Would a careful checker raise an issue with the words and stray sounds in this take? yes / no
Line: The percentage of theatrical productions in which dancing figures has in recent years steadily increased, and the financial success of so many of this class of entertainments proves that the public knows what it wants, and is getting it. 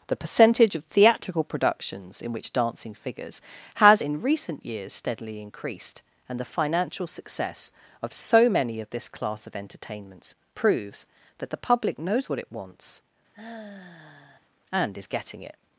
yes